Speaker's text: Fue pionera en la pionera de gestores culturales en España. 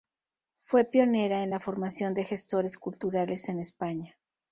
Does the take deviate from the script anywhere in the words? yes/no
yes